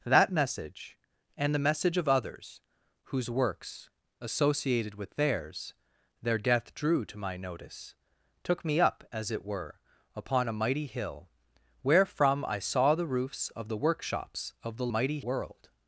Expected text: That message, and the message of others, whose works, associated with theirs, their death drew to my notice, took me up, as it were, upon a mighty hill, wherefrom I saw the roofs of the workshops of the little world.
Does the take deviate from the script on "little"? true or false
true